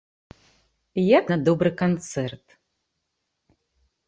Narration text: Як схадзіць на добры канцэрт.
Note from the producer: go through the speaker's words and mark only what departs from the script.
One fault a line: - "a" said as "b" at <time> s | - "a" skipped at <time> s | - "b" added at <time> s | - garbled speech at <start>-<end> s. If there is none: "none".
- "схадзіць" skipped at 1.2 s